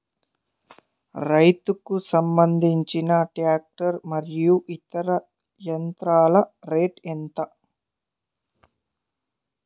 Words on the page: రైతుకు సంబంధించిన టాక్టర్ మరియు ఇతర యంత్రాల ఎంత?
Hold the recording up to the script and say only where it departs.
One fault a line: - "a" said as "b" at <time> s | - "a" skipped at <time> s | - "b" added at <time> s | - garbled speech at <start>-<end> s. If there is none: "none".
- "రేటు" added at 6.7 s